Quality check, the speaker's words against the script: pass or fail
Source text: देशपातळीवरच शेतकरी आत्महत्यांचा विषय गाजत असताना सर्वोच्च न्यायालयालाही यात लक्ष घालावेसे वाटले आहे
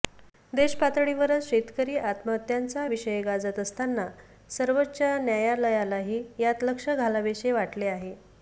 pass